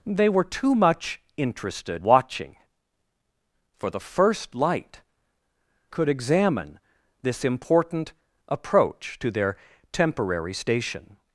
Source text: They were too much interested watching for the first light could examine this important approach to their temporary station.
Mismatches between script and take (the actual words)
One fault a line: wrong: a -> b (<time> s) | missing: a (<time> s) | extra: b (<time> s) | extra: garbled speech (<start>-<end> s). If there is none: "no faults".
no faults